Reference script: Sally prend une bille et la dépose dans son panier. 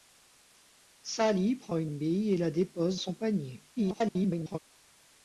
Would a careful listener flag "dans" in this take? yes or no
yes